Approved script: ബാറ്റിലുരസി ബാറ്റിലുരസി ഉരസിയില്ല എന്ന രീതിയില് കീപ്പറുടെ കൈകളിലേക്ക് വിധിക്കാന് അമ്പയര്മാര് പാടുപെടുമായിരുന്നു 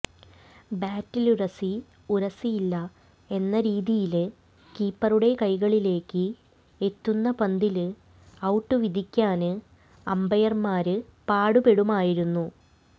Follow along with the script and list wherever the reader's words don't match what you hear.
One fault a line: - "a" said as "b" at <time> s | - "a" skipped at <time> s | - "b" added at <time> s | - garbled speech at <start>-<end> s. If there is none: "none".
- "ബാറ്റിലുരസി" skipped at 1.7 s
- "എത്തുന്ന പന്തില് ഔട്ട്" added at 6.8 s